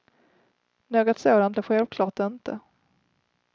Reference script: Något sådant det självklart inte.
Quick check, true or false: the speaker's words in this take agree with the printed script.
true